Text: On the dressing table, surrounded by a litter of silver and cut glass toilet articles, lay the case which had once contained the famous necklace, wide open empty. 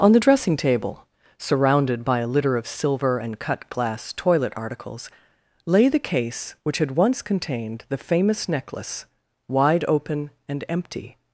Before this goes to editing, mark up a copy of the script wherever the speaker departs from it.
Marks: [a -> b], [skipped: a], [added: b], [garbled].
On the dressing table, surrounded by a litter of silver and cut glass toilet articles, lay the case which had once contained the famous necklace, wide open [added: and] empty.